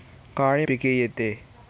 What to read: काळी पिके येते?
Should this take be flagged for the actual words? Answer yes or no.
no